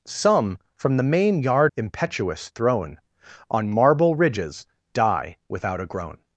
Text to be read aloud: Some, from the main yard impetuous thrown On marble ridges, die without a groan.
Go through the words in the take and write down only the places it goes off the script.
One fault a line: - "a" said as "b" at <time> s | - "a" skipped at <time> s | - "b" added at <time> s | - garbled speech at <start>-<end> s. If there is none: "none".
none